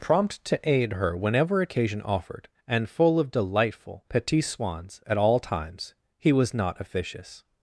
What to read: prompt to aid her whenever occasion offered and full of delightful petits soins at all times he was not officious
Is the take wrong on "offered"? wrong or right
right